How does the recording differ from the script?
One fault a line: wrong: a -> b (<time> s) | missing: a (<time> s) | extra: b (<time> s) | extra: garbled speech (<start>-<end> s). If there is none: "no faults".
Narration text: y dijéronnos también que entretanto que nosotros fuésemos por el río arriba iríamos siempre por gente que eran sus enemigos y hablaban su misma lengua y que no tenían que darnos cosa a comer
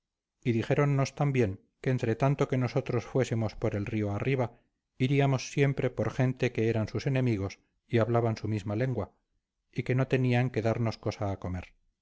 no faults